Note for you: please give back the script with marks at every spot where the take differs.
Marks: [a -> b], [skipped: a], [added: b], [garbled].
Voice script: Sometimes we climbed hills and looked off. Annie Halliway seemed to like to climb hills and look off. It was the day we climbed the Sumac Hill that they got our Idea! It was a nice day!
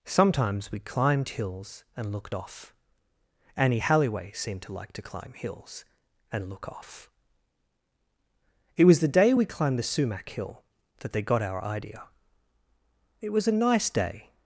Sometimes we climbed hills and looked off. Annie Halliway seemed to like to climb hills and look off. It was the day we climbed the Sumac Hill that they got our Idea! It was a nice day!